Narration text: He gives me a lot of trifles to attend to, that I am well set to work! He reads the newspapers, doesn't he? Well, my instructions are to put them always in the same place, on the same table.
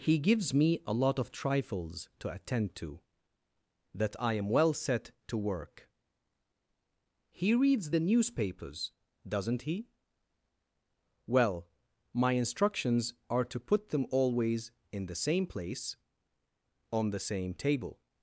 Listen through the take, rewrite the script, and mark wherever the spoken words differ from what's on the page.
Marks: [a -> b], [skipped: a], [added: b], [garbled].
He gives me a lot of trifles to attend to, that I am well set to work! He reads the newspapers, doesn't he? Well, my instructions are to put them always in the same place, on the same table.